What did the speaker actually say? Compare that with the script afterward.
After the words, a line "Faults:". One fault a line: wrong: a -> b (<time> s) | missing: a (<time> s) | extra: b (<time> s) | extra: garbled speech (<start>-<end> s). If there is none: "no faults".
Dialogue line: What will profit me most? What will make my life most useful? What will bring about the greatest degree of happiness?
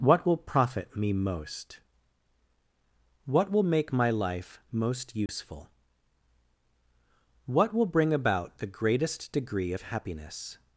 What will profit me most? What will make my life most useful? What will bring about the greatest degree of happiness?
Faults:
no faults